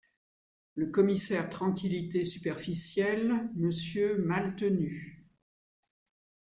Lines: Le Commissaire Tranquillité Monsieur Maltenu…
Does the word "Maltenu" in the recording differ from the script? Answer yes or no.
no